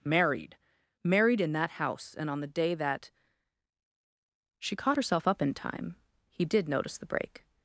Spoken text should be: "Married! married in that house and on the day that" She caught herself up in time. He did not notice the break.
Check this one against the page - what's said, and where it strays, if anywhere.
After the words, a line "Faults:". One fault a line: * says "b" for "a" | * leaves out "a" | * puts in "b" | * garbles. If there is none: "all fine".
"Married! married in that house and on the day that" She caught herself up in time. He did notice the break.
Faults:
* leaves out "not"